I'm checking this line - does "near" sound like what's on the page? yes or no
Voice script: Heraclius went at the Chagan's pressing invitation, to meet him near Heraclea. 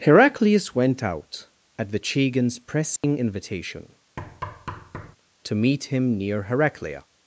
yes